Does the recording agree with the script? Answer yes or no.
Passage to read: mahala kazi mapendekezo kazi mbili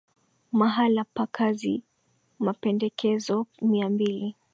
no